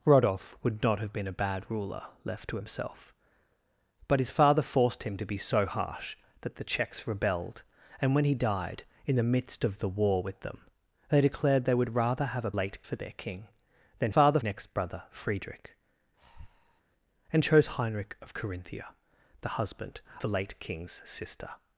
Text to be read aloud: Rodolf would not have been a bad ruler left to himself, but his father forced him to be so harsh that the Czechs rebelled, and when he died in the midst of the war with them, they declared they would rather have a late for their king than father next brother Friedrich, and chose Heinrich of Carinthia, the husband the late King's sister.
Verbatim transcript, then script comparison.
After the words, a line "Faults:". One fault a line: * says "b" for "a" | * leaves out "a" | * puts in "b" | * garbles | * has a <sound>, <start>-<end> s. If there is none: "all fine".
Rodolf would not have been a bad ruler left to himself, but his father forced him to be so harsh that the Czechs rebelled, and when he died in the midst of the war with them, they declared they would rather have a late for their king than father next brother Friedrich, and chose Heinrich of Carinthia, the husband the late King's sister.
Faults:
* has a breath, 16.2-16.8 s